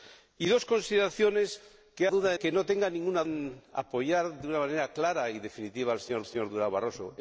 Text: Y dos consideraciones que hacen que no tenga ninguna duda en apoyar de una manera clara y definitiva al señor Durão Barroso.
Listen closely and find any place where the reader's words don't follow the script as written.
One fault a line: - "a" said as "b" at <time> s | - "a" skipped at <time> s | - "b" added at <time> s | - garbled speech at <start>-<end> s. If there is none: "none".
- "hacen" said as "duda" at 2.1 s
- "duda" skipped at 3.2 s
- "señor" added at 6.2 s